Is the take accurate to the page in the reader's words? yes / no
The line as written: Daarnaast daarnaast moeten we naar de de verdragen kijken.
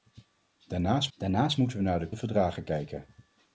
yes